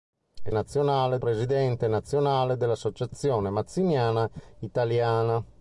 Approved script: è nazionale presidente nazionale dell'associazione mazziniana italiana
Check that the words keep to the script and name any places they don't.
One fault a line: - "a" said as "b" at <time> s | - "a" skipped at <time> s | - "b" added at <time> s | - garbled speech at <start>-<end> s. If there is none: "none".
none